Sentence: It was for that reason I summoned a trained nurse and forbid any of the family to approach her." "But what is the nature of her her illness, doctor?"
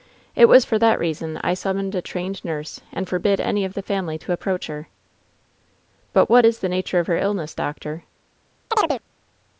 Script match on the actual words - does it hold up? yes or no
no